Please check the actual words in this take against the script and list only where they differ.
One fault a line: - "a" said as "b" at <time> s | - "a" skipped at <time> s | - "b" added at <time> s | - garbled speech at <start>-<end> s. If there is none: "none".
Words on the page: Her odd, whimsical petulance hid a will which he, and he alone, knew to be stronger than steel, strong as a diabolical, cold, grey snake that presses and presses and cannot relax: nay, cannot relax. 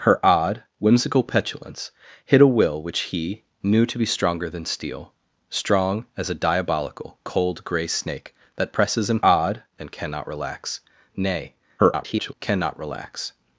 - "and he alone" skipped at 3.4 s
- "presses" said as "odd" at 9.2 s
- garbled speech at 11.8-12.3 s